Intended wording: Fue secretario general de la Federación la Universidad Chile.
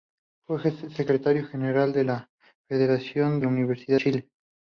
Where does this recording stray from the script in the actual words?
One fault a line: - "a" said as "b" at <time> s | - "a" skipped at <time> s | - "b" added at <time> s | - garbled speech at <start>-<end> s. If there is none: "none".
none